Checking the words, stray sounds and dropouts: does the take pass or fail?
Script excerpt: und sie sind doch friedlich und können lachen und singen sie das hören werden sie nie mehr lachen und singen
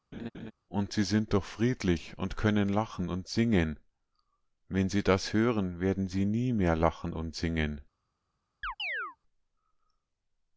fail